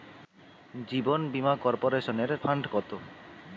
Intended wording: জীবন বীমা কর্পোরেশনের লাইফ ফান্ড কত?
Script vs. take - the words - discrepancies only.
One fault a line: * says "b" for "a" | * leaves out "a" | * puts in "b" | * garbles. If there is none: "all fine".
* leaves out "লাইফ"